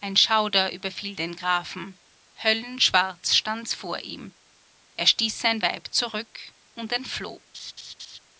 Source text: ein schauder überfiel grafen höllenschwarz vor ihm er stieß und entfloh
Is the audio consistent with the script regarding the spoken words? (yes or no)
no